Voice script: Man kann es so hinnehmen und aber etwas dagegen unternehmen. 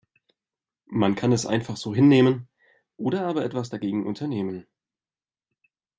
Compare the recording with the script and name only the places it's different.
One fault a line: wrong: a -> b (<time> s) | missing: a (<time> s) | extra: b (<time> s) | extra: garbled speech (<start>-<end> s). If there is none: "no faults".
extra: einfach (1.4 s)
wrong: und -> oder (3.0 s)